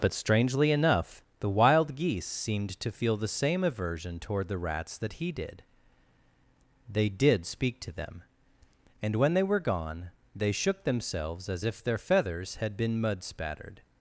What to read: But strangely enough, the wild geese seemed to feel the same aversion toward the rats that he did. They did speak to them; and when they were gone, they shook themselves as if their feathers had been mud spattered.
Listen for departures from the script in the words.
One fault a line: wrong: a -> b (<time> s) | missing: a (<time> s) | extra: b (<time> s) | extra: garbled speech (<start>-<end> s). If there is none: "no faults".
no faults